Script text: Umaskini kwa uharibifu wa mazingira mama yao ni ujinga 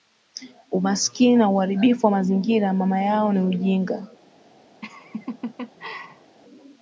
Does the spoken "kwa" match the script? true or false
false